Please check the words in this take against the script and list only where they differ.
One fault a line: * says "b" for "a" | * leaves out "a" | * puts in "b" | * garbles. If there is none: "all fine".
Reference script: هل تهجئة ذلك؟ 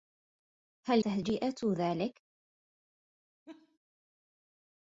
all fine